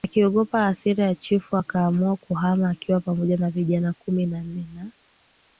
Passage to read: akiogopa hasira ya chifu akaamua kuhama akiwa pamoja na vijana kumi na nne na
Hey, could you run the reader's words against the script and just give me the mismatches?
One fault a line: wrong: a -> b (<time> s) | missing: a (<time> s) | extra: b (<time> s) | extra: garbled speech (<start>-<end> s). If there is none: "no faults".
no faults